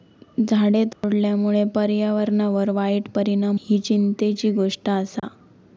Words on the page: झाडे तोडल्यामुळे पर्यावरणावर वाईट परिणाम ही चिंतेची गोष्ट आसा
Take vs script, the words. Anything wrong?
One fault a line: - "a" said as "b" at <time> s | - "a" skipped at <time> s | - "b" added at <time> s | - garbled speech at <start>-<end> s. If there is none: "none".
none